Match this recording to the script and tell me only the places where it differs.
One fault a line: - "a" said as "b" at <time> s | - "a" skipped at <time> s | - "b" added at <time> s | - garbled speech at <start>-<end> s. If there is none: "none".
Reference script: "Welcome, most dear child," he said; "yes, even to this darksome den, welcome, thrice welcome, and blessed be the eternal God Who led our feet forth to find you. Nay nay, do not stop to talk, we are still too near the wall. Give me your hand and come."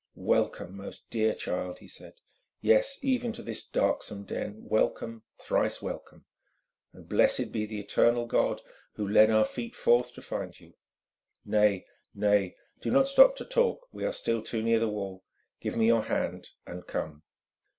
none